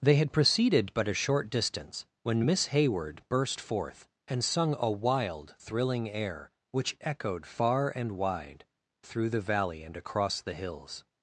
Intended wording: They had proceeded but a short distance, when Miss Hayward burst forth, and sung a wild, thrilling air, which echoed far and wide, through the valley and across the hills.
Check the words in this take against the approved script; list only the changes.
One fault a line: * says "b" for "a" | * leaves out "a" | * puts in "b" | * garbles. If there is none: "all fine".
all fine